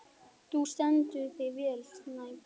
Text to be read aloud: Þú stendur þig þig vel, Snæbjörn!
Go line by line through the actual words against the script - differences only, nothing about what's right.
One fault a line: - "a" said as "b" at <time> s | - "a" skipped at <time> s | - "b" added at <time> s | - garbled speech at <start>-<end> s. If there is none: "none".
- "þig" skipped at 1.5 s